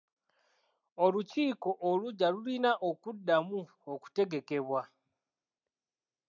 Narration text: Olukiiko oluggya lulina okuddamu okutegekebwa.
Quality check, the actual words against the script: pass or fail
pass